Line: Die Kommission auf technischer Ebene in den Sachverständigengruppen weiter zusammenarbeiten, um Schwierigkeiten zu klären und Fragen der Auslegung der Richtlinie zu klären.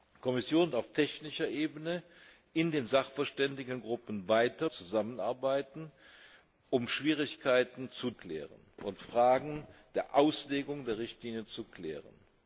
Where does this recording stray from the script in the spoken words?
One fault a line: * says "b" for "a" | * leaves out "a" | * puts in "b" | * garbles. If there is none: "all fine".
all fine